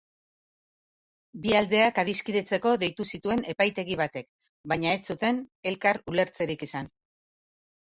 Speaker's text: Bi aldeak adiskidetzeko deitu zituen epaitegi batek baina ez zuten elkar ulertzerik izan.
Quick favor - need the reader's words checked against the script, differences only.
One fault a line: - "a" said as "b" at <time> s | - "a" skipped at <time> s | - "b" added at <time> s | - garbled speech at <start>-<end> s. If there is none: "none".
none